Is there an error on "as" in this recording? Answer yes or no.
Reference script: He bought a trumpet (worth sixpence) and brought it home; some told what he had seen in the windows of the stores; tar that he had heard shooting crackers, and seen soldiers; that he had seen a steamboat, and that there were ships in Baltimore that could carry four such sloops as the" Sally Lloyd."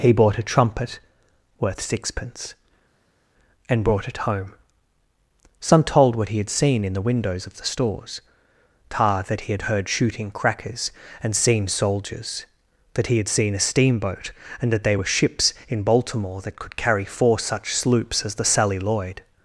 no